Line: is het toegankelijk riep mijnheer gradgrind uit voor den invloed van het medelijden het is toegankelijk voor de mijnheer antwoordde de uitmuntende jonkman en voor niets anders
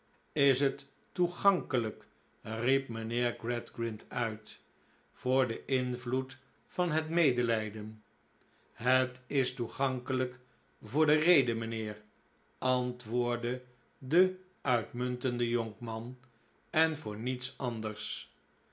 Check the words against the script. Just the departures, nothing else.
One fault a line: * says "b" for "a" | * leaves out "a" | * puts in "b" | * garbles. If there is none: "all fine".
* puts in "rede"